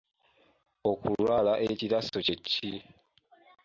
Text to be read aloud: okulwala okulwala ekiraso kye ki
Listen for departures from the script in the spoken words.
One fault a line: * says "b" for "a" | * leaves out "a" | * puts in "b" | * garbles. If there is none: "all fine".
* leaves out "okulwala"